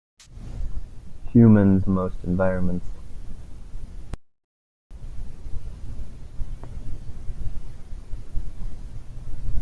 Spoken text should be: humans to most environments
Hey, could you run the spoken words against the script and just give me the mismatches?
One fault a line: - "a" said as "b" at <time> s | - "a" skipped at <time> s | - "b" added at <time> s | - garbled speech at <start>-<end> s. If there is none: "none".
none